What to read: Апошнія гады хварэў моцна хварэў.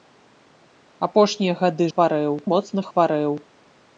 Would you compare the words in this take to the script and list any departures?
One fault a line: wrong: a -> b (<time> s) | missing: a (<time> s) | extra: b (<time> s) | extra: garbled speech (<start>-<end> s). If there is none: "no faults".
no faults